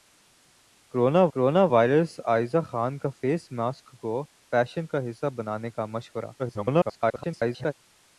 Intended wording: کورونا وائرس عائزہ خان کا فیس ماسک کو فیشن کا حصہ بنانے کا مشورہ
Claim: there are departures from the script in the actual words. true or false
true